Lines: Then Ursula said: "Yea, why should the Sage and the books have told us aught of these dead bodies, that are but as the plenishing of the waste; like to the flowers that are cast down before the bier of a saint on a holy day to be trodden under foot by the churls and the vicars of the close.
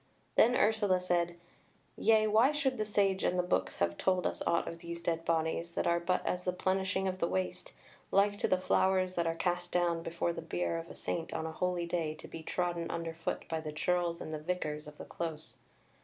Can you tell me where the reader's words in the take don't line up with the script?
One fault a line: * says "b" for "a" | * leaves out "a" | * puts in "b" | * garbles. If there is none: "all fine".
all fine